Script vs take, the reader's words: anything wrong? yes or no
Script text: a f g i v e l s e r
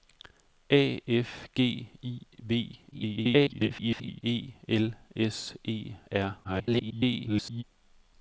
yes